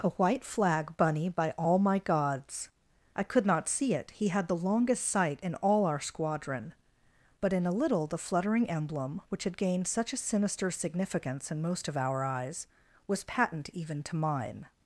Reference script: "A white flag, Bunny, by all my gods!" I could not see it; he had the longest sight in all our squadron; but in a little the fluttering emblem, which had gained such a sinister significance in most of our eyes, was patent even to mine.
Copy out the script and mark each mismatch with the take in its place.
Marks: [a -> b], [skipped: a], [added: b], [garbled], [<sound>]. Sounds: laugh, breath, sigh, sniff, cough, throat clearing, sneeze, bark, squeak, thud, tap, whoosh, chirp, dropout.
"A white flag, Bunny, by all my gods!" I could not see it; he had the longest sight in all our squadron; but in a little the fluttering emblem, which had gained such a sinister significance in most of our eyes, was patent even to mine.